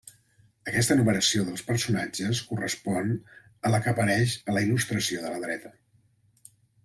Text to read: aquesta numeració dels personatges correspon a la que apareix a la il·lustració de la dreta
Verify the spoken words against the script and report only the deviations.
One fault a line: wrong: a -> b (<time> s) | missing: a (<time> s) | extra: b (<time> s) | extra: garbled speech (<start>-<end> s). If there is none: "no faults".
no faults